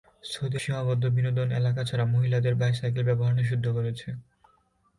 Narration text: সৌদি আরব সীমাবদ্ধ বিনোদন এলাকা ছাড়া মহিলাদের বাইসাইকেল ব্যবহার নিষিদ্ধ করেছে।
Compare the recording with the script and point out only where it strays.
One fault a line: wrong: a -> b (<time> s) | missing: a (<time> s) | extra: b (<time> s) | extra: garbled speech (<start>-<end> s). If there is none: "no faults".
missing: আরব (0.6 s)